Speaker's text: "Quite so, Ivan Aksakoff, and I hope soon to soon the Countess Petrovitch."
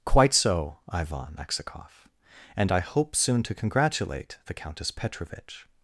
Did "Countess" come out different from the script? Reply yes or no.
no